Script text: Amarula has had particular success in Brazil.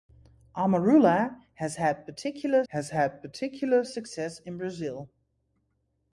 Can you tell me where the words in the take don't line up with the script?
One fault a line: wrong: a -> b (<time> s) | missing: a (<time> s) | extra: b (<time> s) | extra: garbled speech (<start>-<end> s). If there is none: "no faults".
extra: has had particular (2.7 s)